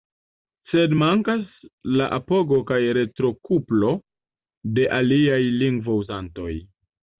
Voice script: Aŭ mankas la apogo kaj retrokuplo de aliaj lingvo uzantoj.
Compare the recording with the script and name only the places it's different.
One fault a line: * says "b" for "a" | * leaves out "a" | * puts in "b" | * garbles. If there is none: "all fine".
* says "Sed" for "Aŭ"